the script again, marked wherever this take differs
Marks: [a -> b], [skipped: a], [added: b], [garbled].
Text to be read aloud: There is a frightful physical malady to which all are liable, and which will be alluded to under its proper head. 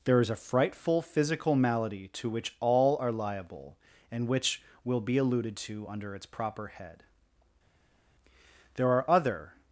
There is a frightful physical malady to which all are liable, and which will be alluded to under its proper head. [added: There are other]